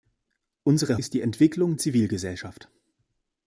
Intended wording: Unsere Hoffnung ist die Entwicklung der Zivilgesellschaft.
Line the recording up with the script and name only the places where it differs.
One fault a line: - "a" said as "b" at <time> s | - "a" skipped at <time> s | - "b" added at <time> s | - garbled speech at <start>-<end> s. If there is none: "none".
- "Hoffnung" skipped at 1.0 s
- "der" skipped at 1.8 s